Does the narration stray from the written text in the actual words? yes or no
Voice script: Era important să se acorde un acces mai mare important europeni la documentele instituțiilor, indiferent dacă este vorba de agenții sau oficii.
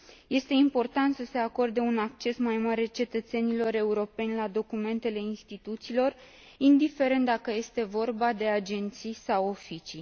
yes